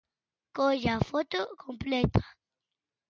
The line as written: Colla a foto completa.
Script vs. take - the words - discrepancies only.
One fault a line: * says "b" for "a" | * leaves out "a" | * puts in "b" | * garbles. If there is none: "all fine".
all fine